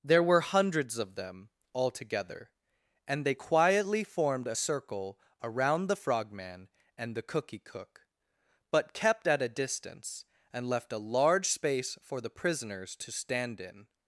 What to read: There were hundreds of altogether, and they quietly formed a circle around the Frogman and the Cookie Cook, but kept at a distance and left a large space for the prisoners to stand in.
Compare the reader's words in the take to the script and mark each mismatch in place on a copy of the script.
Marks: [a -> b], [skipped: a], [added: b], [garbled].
There were hundreds of [added: them] altogether, and they quietly formed a circle around the Frogman and the Cookie Cook, but kept at a distance and left a large space for the prisoners to stand in.